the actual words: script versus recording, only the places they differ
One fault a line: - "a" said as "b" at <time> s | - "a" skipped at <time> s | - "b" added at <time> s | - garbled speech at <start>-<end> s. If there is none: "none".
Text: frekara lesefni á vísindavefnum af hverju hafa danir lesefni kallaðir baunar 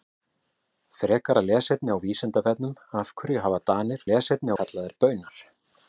none